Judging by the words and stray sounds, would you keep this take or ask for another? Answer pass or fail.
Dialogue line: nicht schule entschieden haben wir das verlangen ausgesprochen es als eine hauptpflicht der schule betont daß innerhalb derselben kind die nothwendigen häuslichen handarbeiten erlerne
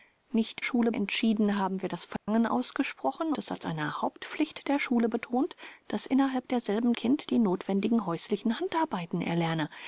fail